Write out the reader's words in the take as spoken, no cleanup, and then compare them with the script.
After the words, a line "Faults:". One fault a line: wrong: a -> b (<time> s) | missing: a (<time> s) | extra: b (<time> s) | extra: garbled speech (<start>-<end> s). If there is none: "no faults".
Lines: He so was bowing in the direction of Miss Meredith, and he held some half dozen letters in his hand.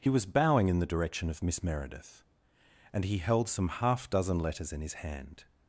He was bowing in the direction of Miss Meredith, and he held some half dozen letters in his hand.
Faults:
missing: so (0.1 s)